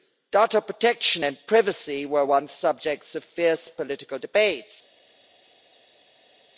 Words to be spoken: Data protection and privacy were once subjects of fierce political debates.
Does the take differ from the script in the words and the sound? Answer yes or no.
no